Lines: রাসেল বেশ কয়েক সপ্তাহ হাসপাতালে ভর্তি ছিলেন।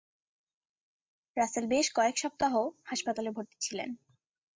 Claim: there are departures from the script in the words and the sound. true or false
false